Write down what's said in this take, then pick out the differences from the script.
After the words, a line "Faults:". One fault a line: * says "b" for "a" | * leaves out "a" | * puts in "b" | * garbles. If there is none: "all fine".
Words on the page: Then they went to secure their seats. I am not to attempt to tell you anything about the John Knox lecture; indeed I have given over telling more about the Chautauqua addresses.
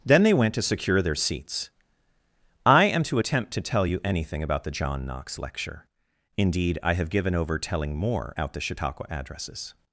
Then they went to secure their seats. I am to attempt to tell you anything about the John Knox lecture; indeed I have given over telling more out the Chautauqua addresses.
Faults:
* leaves out "not"
* says "out" for "about"